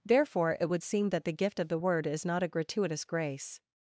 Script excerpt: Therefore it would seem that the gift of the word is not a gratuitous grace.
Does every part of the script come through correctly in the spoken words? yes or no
yes